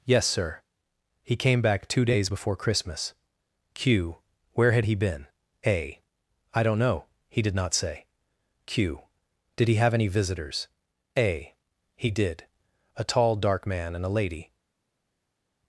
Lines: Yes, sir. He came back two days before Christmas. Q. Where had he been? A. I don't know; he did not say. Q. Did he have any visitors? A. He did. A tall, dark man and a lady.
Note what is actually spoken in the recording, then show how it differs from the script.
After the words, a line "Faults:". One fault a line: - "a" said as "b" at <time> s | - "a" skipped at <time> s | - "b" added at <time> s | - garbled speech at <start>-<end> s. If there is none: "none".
Yes, sir. He came back two days before Christmas. Q. Where had he been? A. I don't know; he did not say. Q. Did he have any visitors? A. He did. A tall, dark man and a lady.
Faults:
none